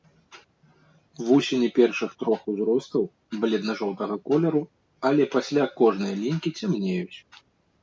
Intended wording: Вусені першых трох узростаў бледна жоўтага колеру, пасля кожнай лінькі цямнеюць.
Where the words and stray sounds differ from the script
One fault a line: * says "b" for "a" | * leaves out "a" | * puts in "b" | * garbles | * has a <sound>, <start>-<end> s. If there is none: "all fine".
* puts in "але"